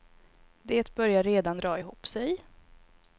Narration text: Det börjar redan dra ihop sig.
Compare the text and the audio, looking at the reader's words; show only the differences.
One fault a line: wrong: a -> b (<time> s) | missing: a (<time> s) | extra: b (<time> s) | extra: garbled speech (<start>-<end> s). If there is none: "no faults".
no faults